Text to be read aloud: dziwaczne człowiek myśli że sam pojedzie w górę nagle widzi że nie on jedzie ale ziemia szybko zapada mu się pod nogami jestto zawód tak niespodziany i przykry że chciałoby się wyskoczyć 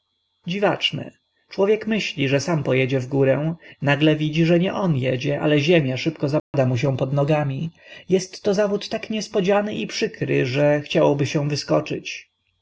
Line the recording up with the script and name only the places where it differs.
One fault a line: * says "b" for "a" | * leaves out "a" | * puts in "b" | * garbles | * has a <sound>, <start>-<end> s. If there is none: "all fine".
* has a dropout, 6.4-6.5 s